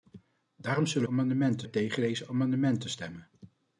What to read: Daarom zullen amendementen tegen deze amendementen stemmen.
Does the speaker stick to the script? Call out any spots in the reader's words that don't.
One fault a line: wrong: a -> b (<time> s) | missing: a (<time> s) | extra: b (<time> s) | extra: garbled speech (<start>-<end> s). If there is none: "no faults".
no faults